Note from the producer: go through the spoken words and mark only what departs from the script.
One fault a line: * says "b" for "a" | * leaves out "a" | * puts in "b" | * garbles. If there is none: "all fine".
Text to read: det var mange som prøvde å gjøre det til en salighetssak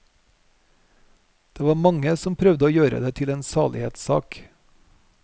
all fine